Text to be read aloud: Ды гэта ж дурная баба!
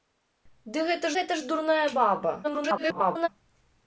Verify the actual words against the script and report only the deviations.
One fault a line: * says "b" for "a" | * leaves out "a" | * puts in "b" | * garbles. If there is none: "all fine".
* puts in "гэта"
* garbles